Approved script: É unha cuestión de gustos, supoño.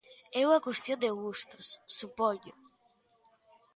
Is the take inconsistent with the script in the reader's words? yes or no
no